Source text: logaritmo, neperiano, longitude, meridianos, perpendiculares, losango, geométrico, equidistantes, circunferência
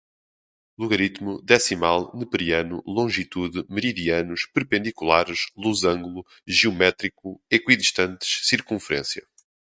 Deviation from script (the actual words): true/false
true